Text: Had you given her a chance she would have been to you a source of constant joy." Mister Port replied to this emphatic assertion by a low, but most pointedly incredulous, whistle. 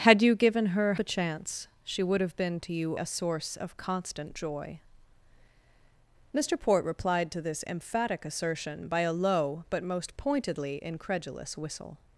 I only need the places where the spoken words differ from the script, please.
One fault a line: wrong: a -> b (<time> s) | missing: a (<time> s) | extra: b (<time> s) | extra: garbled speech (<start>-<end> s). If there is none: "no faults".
no faults